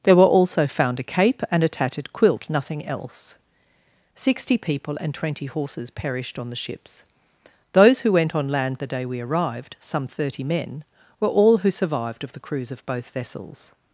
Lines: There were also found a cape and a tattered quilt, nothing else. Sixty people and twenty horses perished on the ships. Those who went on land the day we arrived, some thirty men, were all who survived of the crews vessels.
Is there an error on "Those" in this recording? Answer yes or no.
no